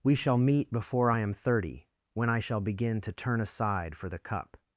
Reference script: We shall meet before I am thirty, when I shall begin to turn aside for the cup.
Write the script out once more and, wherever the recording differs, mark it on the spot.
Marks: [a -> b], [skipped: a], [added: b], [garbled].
We shall meet before I am thirty, when I shall begin to turn aside for the cup.